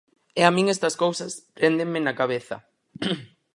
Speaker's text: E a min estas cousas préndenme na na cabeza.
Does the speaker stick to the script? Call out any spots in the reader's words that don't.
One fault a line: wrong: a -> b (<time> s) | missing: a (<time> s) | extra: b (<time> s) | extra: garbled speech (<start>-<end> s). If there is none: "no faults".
missing: na (2.1 s)